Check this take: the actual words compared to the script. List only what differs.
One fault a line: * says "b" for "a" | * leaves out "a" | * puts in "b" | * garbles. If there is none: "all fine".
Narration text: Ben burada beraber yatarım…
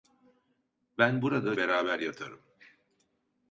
all fine